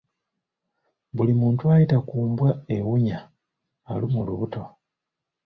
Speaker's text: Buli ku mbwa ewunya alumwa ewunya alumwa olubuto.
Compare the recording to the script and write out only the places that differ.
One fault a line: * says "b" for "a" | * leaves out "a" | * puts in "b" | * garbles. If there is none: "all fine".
* puts in "muntu ayita"
* leaves out "ewunya alumwa"